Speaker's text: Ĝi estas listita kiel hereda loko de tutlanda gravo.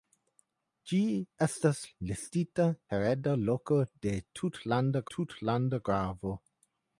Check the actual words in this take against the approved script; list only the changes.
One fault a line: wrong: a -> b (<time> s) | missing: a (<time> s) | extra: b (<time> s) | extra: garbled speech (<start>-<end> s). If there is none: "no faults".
missing: kiel (2.7 s)
extra: tutlanda (5.2 s)